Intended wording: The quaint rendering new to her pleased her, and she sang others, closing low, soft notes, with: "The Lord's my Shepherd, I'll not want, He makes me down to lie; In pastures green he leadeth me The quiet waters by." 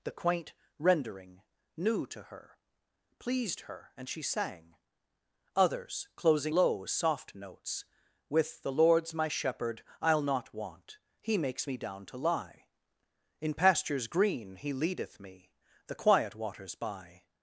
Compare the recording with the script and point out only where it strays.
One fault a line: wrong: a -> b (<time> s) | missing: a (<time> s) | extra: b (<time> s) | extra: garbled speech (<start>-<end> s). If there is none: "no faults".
no faults